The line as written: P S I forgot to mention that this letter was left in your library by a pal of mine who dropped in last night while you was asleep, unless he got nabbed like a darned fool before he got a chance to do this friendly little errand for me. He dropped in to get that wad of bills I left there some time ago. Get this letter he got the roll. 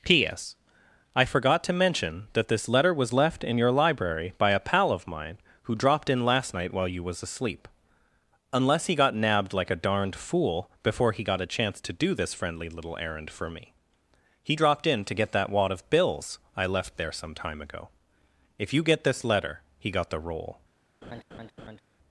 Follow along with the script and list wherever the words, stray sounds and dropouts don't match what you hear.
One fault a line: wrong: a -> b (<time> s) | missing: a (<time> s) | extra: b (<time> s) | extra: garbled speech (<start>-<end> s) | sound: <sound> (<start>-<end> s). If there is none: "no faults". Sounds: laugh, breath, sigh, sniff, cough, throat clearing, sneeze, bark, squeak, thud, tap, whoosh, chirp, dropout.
extra: If you (18.6 s)
sound: laugh (21.0-21.8 s)